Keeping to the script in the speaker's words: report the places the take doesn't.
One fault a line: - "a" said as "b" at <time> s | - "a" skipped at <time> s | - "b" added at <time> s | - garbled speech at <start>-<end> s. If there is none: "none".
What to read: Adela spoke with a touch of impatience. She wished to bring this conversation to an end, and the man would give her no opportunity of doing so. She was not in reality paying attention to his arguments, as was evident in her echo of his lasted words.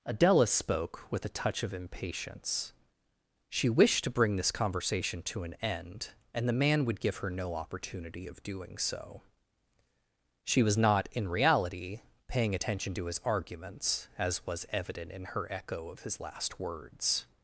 - "lasted" said as "last" at 16.2 s